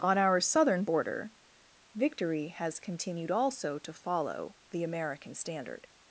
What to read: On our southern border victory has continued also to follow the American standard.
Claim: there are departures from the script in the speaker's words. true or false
false